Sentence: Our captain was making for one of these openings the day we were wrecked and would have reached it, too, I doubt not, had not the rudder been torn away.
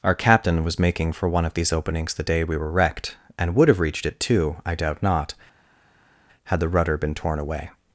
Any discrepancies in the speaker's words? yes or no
yes